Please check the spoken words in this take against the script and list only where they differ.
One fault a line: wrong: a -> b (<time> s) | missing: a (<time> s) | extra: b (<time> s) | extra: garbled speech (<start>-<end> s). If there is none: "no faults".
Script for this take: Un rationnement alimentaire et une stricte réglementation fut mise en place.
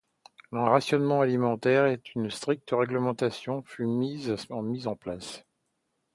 no faults